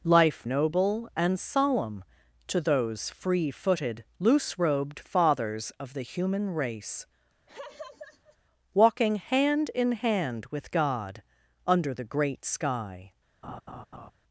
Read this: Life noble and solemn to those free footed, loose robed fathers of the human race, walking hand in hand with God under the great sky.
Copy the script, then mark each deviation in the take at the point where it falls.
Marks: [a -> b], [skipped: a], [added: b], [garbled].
Life noble and solemn to those free footed, loose robed fathers of the human race, walking hand in hand with God under the great sky.